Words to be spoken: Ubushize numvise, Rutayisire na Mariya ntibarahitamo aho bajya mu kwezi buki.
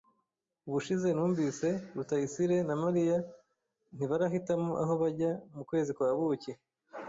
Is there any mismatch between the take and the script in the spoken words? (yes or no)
yes